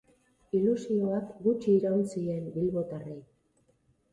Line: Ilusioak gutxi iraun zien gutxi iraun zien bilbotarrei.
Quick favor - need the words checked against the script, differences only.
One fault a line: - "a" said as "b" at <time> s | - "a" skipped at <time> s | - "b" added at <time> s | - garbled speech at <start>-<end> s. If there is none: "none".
- "gutxi iraun zien" skipped at 2.5 s